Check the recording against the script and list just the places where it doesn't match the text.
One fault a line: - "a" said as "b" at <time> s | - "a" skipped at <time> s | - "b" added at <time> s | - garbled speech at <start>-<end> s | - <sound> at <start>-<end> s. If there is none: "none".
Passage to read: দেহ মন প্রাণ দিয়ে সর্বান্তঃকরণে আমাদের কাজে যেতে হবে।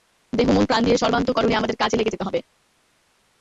- "লেগে" added at 2.0 s